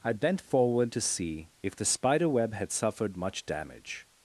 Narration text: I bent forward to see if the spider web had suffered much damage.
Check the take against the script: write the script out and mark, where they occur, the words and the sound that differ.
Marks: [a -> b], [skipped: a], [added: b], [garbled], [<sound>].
I bent forward to see if the spider web had suffered much damage.